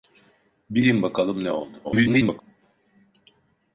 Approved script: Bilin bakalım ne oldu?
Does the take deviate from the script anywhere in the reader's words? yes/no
yes